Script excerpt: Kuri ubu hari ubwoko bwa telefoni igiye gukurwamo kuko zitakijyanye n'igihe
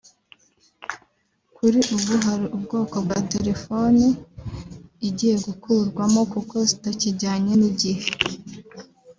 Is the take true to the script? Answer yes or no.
yes